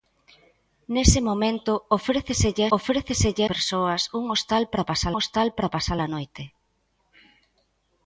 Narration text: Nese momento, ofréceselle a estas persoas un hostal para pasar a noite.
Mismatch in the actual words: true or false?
true